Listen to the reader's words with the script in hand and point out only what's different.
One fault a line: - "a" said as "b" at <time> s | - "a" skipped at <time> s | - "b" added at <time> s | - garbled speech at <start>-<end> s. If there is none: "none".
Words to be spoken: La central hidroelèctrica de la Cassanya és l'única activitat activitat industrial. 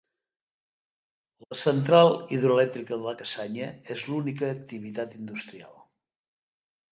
- "activitat" skipped at 5.2 s